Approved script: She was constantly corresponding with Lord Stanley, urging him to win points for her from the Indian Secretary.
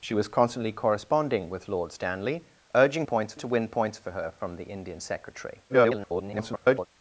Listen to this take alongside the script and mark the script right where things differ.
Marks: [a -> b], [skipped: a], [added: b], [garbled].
She was constantly corresponding with Lord Stanley, urging [him -> points] to win points for her from the Indian Secretary. [garbled]